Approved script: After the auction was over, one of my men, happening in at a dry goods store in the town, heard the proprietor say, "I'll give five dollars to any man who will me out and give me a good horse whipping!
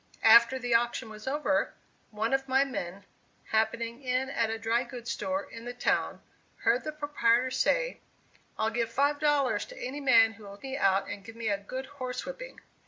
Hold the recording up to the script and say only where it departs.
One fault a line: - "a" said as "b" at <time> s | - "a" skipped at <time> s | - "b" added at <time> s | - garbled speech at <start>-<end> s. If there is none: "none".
none